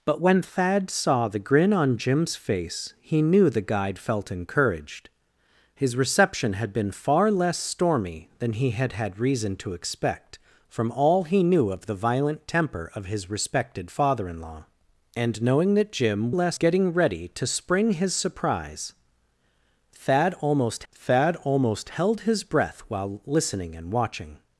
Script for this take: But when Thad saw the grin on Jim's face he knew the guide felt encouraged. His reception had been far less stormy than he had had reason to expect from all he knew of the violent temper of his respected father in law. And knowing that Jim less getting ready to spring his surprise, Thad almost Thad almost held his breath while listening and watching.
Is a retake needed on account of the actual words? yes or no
no